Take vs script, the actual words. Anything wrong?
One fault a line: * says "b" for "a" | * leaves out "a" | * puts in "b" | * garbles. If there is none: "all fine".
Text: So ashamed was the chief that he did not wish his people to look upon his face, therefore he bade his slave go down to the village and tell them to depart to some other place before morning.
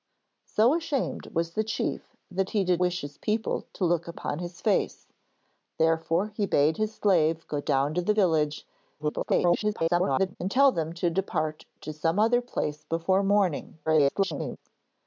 * leaves out "not"
* garbles
* garbles